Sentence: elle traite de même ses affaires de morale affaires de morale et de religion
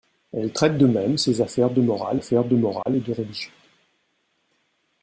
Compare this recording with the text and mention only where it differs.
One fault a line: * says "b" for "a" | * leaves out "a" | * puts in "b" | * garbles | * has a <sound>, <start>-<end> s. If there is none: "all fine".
* has a dropout, 2.8-2.9 s